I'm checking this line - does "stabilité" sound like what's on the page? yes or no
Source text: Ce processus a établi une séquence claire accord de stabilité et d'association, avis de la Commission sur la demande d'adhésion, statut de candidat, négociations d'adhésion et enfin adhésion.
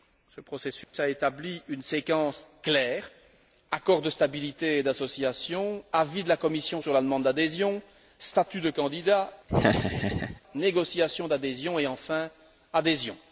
yes